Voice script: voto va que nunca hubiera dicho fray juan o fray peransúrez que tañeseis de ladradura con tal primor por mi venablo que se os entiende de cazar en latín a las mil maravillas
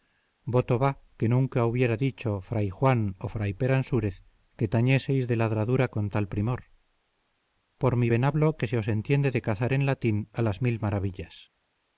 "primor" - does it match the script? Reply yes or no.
yes